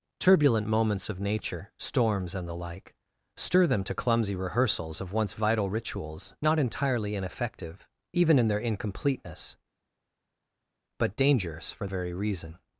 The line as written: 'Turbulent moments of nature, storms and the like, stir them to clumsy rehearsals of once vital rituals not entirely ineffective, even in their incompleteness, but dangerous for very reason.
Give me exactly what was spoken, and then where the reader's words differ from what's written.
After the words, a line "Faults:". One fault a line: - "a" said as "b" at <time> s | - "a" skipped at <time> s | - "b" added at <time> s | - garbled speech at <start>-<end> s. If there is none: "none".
'Turbulent moments of nature, storms and the like, stir them to clumsy rehearsals of once vital rituals not entirely ineffective, even in their incompleteness, but dangerous for very reason.
Faults:
none